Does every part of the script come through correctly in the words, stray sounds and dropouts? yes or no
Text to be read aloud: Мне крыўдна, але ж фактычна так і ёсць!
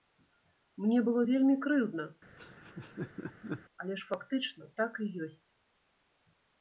no